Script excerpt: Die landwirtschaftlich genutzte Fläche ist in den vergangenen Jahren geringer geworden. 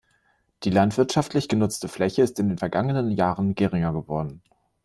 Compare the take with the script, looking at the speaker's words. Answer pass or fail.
pass